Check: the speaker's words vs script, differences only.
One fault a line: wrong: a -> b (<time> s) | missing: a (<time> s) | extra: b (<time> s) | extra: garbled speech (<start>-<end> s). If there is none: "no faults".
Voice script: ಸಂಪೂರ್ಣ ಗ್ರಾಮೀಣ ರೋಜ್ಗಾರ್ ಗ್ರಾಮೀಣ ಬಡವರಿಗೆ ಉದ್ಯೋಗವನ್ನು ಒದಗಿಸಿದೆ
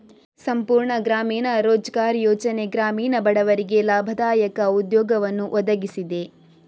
extra: ಯೋಜನೆ (2.2 s)
extra: ಲಾಭದಾಯಕ (3.8 s)